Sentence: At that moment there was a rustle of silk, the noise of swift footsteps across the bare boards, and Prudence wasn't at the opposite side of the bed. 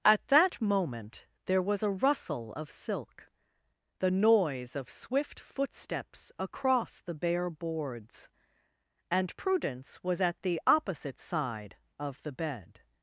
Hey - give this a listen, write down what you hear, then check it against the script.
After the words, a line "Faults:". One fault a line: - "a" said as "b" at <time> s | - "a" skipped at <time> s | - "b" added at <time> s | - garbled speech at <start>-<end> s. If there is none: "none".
At that moment there was a rustle of silk, the noise of swift footsteps across the bare boards, and Prudence was at the opposite side of the bed.
Faults:
- "wasn't" said as "was" at 10.0 s